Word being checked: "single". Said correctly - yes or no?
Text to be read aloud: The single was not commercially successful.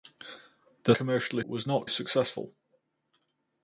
no